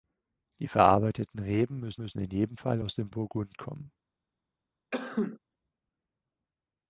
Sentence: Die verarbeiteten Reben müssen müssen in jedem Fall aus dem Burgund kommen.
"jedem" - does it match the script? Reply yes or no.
yes